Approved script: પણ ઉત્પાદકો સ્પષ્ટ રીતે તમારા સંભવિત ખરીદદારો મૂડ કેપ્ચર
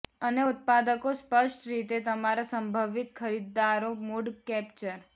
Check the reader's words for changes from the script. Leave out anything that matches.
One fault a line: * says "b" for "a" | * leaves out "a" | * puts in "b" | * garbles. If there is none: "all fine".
* says "અને" for "પણ"